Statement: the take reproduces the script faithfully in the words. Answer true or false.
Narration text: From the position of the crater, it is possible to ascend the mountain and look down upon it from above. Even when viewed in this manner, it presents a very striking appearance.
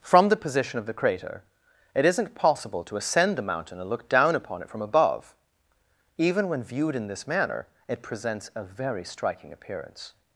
false